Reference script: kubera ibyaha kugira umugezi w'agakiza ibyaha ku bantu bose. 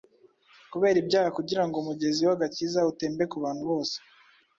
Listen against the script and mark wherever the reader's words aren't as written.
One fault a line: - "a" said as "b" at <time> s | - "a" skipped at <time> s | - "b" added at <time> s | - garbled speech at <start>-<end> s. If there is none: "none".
- "ngo" added at 1.7 s
- "ibyaha" said as "utembe" at 2.9 s